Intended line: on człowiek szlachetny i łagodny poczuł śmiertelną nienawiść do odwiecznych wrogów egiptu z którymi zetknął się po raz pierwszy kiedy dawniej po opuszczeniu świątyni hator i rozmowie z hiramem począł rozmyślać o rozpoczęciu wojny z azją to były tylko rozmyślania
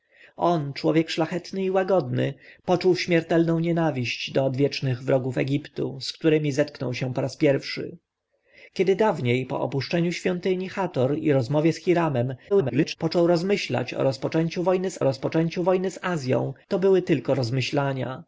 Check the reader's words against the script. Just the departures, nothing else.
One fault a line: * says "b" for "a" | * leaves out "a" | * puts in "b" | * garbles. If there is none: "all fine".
* garbles
* puts in "rozpoczęciu wojny z"